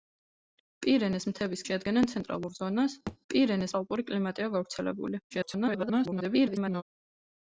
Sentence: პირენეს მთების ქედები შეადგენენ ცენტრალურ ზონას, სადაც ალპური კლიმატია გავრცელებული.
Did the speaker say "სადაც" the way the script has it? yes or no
no